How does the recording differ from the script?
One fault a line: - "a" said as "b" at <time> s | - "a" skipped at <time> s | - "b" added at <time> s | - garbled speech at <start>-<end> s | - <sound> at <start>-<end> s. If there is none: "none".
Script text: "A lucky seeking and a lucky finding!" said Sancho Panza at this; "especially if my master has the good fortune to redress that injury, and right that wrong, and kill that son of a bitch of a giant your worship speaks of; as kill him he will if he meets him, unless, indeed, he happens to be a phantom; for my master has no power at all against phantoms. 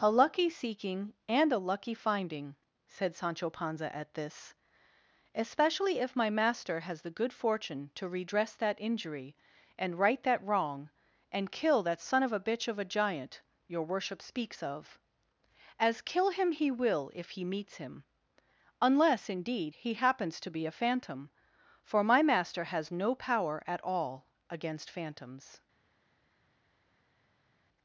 none